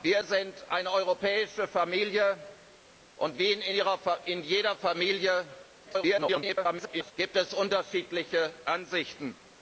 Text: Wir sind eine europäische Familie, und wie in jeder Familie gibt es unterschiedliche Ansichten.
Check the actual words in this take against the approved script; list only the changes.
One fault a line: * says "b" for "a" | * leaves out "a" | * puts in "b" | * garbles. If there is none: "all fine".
* garbles